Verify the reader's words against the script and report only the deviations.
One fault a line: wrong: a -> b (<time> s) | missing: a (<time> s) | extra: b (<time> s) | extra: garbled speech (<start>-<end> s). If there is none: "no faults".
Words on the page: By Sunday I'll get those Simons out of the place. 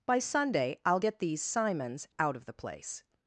wrong: those -> these (1.2 s)